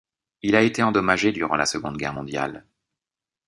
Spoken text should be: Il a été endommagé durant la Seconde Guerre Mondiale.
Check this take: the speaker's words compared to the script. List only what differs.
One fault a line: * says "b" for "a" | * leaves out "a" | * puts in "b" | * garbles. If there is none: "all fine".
all fine